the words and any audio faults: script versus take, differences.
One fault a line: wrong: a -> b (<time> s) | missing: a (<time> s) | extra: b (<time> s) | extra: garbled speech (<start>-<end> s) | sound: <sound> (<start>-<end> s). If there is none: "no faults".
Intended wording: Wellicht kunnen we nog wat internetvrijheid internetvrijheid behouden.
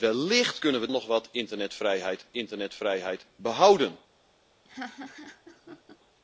sound: laugh (4.6-6.0 s)